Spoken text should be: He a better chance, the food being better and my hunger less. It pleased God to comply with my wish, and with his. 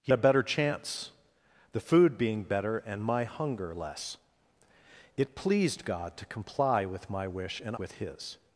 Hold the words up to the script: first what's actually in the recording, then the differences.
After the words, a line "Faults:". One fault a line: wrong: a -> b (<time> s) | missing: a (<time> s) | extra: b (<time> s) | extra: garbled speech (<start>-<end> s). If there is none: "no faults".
He a better chance, the food being better and my hunger less. It pleased God to comply with my wish, and with his.
Faults:
no faults